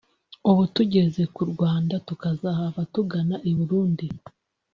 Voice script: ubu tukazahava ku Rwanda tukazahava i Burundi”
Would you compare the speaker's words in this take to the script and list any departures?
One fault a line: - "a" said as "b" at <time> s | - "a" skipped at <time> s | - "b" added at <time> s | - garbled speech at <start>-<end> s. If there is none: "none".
- "tukazahava" said as "tugeze" at 0.7 s
- "tugana" added at 2.9 s